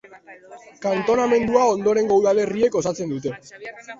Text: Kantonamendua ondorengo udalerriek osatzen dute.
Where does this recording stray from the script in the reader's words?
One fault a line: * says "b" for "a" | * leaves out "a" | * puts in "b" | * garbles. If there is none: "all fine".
all fine